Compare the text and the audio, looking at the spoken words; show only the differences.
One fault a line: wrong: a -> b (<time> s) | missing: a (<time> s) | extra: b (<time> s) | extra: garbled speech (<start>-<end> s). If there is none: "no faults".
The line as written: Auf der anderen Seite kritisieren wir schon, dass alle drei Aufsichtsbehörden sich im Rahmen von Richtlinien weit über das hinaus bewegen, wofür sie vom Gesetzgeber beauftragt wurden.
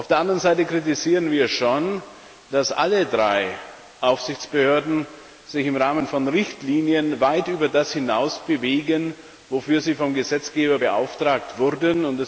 no faults